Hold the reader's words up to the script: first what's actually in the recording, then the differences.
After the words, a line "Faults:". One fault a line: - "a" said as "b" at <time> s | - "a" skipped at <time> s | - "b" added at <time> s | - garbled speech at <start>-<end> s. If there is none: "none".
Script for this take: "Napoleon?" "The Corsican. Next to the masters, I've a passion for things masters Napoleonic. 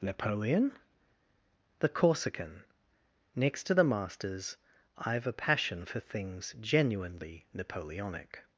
"Napoleon?" "The Corsican. Next to the masters, I've a passion for things genuinely Napoleonic.
Faults:
- "masters" said as "genuinely" at 6.6 s